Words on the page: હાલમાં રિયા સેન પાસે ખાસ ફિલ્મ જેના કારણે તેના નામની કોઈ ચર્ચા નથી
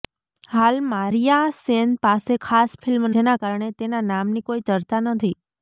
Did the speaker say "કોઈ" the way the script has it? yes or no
yes